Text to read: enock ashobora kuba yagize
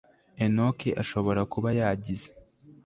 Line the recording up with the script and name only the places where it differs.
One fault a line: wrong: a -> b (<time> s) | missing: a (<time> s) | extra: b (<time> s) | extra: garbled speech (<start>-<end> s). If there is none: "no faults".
no faults